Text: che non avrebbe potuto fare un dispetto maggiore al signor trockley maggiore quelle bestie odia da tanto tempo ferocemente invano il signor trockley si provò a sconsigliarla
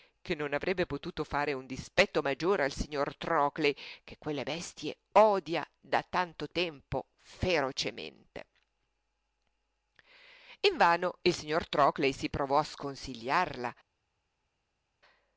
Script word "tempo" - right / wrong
right